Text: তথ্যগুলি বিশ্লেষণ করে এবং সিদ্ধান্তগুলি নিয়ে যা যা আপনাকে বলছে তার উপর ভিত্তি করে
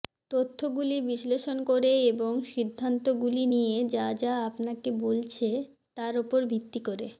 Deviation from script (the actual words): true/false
false